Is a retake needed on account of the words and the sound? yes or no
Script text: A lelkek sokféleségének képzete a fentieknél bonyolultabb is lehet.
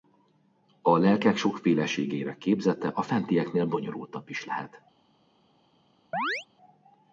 yes